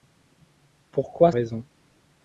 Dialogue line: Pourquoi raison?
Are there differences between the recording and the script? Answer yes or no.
no